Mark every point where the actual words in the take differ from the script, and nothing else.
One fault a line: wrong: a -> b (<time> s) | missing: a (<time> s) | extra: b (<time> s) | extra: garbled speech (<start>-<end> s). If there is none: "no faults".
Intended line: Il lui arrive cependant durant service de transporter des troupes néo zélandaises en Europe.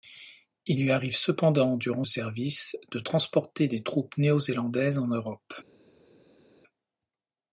no faults